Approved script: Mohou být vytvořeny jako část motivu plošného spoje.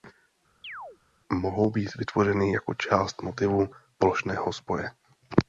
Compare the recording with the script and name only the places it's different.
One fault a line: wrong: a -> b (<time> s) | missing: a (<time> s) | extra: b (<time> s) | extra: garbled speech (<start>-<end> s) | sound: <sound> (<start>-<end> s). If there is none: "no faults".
sound: chirp (0.6-1.0 s)